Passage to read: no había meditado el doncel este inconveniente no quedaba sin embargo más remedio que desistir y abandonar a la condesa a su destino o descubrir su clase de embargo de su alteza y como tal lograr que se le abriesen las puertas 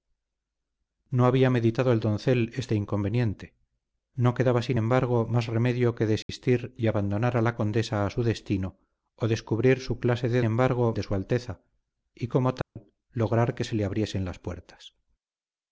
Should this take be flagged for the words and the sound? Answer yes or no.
yes